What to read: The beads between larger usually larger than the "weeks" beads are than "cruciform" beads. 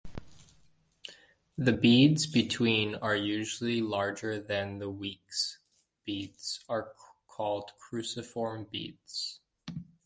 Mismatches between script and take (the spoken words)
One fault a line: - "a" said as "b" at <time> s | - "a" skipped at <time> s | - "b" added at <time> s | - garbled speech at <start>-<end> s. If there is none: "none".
- "larger" said as "are" at 2.9 s
- "than" said as "called" at 7.3 s